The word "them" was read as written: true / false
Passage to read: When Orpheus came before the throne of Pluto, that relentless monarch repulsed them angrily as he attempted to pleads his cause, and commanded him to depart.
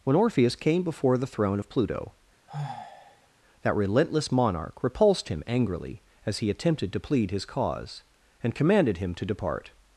false